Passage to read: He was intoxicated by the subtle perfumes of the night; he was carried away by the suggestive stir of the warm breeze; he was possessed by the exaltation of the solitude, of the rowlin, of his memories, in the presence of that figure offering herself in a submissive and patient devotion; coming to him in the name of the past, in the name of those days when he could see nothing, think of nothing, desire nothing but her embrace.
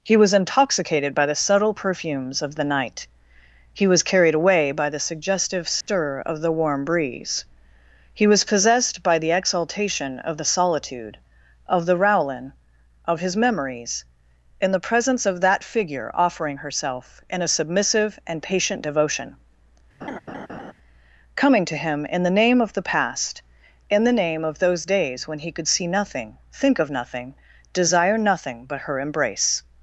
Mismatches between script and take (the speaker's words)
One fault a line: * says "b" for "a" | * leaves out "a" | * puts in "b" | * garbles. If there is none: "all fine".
all fine